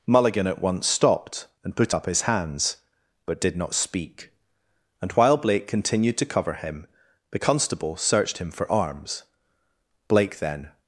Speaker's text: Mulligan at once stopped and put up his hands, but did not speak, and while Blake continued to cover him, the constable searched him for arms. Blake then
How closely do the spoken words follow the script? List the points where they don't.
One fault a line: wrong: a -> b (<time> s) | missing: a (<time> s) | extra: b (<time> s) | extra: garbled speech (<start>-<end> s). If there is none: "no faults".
no faults